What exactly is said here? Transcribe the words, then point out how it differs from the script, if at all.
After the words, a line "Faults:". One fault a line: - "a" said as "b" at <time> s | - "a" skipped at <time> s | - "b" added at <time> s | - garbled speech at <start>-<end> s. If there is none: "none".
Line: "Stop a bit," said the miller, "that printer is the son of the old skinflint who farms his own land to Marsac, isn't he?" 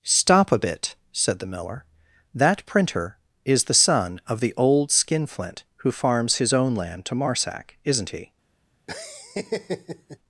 "Stop a bit," said the miller, "that printer is the son of the old skinflint who farms his own land to Marsac, isn't he?"
Faults:
none